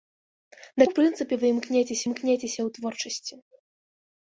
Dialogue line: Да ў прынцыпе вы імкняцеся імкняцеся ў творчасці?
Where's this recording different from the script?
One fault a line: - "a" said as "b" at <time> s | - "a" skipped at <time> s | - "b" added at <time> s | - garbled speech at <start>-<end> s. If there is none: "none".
none